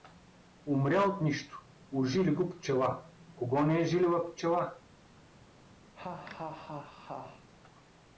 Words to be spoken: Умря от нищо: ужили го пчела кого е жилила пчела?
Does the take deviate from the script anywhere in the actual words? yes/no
yes